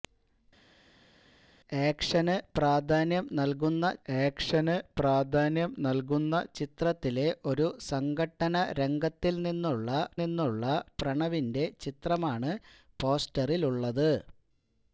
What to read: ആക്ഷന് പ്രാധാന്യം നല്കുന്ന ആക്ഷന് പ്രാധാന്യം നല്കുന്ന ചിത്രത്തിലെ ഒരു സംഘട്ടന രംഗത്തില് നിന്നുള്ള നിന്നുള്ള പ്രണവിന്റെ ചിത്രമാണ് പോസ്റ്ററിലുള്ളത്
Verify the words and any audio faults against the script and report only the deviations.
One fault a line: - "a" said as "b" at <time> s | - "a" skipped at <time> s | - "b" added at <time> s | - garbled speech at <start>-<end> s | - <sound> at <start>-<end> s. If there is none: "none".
none